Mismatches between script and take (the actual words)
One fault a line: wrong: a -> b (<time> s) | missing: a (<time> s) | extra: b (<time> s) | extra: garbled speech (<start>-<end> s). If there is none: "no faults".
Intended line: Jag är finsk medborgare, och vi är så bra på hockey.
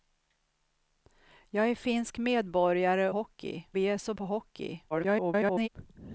wrong: och -> hockey (3.1 s)
missing: bra (4.1 s)
extra: garbled speech (4.9-5.7 s)